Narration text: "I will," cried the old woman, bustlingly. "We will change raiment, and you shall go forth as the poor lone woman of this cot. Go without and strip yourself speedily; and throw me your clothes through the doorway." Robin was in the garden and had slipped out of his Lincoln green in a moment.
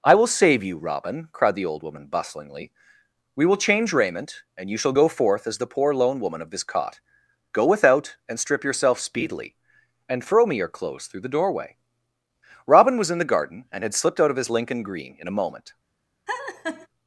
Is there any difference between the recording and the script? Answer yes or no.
yes